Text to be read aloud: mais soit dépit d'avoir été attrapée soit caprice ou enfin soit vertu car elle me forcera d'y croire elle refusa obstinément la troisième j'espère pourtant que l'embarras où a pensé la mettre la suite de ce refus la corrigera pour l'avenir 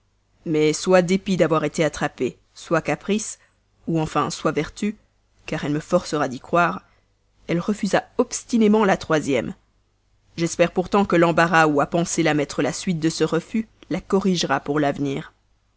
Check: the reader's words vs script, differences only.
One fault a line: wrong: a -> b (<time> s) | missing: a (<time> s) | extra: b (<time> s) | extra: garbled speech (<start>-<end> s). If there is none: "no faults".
no faults